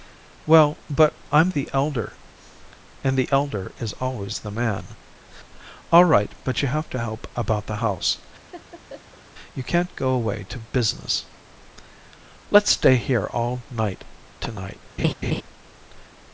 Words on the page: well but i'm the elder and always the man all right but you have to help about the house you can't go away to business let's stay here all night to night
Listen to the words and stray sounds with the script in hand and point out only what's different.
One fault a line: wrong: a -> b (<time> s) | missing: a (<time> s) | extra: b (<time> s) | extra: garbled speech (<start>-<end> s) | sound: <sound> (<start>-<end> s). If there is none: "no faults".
extra: the elder is (3.1 s)
sound: laugh (8.5-9.2 s)
sound: laugh (15.0-15.4 s)